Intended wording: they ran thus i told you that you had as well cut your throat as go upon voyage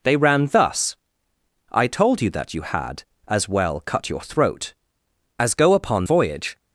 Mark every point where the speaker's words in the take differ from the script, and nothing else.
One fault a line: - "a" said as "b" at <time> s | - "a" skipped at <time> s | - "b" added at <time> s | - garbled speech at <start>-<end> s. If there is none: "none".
none